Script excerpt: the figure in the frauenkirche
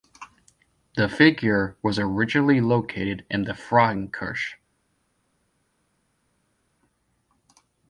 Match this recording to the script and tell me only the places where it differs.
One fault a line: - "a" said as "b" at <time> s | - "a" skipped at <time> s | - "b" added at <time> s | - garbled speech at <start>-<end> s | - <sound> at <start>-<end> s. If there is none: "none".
- "was originally located" added at 1.8 s